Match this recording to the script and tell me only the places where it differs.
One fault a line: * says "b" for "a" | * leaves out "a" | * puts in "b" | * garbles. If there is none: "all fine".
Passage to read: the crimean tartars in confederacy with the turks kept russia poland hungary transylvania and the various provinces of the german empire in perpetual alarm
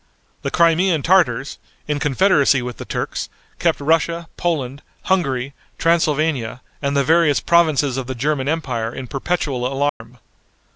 all fine